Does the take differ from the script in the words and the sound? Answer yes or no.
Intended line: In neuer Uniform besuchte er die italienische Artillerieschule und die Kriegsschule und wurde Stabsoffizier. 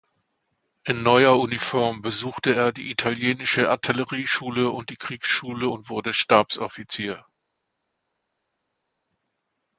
no